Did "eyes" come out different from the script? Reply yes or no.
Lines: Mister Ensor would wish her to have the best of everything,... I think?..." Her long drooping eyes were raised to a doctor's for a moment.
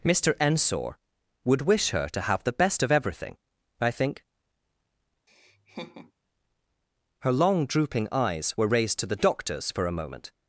no